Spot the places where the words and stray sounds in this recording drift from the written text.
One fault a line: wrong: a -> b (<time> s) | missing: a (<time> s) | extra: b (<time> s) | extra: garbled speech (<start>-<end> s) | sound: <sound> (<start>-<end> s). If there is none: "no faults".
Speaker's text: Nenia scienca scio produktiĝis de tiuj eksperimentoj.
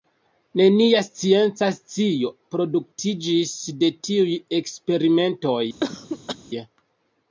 sound: cough (5.8-6.4 s)